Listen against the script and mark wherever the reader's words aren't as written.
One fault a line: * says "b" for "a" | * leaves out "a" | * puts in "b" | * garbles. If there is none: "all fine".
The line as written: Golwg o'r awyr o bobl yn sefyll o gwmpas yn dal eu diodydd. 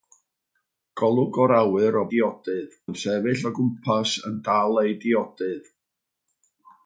* says "diodydd" for "bobl"